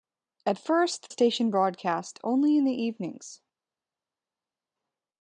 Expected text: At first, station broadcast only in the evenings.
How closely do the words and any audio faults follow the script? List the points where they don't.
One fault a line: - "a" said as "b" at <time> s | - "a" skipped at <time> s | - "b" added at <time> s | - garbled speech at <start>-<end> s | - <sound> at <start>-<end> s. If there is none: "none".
none